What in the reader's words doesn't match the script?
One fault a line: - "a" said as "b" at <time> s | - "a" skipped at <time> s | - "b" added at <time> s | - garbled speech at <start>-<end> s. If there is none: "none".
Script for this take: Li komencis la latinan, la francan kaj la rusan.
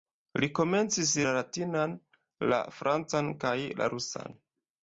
none